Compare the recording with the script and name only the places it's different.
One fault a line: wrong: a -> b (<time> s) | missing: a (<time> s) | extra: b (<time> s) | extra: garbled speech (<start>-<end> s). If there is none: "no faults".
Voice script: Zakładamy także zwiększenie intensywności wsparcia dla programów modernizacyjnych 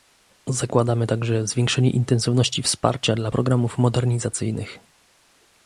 no faults